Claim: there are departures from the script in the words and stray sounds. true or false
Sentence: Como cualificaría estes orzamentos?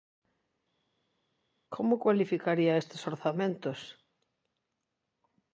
false